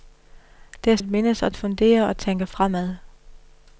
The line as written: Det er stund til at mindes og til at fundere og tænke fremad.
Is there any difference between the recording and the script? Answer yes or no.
yes